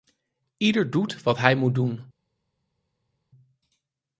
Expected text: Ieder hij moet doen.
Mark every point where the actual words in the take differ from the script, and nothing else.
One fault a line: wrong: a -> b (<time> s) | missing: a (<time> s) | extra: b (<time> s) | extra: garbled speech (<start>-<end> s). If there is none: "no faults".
extra: doet wat (0.9 s)